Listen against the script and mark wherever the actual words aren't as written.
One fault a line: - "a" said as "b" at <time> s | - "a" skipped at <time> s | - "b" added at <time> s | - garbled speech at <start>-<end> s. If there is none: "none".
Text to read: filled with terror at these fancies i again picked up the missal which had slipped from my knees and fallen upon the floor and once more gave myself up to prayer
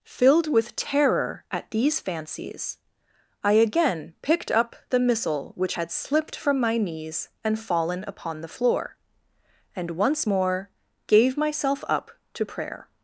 none